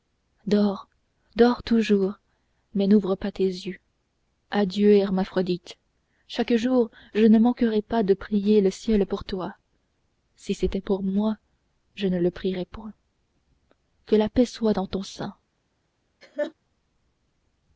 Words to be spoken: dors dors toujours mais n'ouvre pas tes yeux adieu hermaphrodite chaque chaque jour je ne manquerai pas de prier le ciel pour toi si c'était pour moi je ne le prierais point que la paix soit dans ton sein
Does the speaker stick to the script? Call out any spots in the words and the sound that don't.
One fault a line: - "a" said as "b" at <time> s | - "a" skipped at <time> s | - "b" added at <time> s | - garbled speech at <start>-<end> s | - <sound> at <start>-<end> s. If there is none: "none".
- "chaque" skipped at 6.5 s
- laugh at 16.2-16.5 s